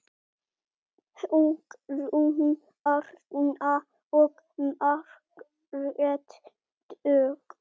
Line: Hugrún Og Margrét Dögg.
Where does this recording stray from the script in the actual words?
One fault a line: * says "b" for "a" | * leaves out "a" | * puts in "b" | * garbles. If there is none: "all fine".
* puts in "Arna"